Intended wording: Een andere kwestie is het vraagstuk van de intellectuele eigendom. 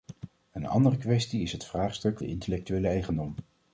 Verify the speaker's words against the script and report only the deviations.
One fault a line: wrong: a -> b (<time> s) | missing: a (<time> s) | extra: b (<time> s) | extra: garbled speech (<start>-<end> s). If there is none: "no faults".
missing: van (2.2 s)